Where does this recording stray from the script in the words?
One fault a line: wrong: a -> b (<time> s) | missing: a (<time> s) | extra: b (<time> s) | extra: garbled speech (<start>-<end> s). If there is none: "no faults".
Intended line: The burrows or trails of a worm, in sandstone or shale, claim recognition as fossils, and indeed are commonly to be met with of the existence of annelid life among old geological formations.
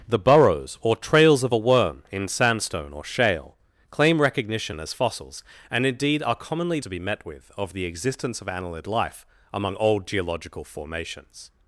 no faults